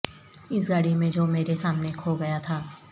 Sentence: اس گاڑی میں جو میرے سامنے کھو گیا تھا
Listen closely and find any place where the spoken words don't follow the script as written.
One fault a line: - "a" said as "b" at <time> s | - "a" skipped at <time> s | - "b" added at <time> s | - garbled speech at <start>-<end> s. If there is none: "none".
none